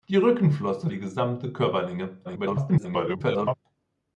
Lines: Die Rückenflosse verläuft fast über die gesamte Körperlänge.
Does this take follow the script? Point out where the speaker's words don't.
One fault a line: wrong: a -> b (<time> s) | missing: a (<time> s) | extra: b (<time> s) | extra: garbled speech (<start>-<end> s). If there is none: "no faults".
missing: verläuft fast über (0.9 s)
extra: garbled speech (2.2-3.5 s)